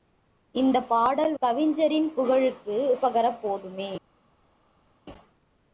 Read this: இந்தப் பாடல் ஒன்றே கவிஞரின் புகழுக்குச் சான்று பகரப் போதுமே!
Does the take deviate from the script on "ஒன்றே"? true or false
true